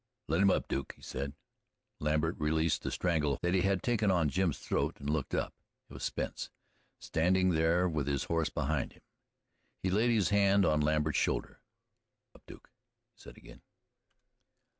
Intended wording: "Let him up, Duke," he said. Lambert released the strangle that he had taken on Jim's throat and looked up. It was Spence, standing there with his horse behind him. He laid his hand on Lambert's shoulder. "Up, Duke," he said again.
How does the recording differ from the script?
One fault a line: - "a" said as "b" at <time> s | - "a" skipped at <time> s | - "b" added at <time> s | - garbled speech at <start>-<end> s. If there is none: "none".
none